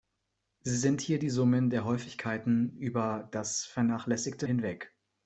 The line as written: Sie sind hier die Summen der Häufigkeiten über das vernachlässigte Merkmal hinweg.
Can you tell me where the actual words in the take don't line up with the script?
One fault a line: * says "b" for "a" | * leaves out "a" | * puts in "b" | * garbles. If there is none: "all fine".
* leaves out "Merkmal"